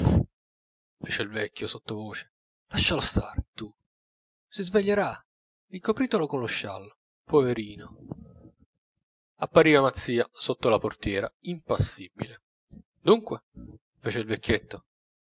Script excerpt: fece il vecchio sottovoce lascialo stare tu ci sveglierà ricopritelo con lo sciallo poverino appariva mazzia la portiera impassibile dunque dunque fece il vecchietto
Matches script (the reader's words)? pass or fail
fail